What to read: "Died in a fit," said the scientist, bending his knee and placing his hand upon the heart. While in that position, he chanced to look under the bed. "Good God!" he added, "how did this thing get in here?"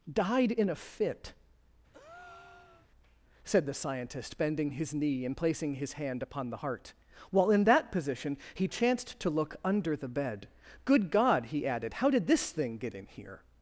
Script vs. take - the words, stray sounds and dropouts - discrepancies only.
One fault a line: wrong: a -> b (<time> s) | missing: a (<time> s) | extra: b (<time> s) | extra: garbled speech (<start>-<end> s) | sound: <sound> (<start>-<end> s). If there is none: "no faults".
sound: breath (1.9-2.9 s)